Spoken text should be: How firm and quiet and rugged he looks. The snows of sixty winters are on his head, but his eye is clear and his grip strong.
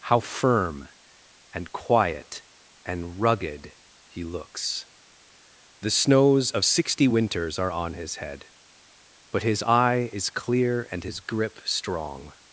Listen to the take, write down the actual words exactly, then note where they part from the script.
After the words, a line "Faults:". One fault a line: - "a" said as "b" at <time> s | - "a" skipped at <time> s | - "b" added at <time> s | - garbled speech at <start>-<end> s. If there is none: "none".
How firm and quiet and rugged he looks. The snows of sixty winters are on his head, but his eye is clear and his grip strong.
Faults:
none